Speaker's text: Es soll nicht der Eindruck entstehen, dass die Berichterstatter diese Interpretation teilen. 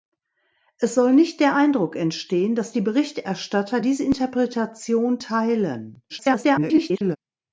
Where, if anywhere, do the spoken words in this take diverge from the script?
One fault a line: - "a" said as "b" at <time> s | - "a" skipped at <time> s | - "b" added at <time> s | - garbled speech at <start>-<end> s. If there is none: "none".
- garbled speech at 6.1-7.2 s